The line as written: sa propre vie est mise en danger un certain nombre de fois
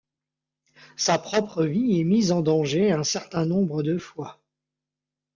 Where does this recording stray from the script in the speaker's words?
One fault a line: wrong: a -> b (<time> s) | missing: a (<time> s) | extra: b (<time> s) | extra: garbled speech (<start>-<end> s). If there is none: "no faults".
no faults